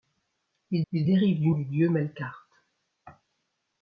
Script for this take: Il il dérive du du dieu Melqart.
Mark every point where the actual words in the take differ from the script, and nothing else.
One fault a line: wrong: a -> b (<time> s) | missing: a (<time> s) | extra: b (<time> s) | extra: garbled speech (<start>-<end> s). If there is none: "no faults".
no faults